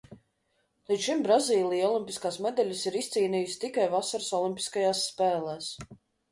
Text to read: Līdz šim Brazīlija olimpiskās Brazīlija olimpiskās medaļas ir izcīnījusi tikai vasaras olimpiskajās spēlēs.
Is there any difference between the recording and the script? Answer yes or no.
yes